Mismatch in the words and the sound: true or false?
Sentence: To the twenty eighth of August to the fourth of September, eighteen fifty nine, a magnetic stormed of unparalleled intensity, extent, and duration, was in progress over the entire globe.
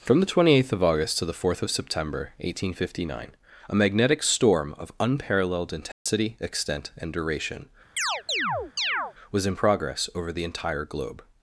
true